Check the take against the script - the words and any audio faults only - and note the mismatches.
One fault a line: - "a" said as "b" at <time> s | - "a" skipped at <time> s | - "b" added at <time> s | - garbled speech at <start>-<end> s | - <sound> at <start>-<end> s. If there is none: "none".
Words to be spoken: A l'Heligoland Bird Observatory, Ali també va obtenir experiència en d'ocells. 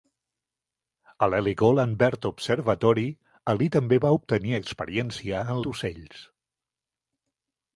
none